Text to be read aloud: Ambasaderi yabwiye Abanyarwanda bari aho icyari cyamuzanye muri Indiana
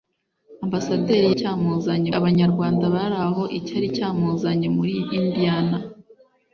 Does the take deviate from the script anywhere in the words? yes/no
yes